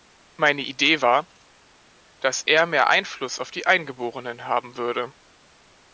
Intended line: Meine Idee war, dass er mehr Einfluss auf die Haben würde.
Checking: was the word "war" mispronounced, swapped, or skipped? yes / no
no